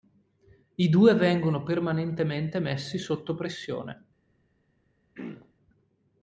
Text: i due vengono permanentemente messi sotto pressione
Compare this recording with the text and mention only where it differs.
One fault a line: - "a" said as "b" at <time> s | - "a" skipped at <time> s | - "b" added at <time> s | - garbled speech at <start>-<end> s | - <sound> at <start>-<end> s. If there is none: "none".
- throat clearing at 5.1-5.5 s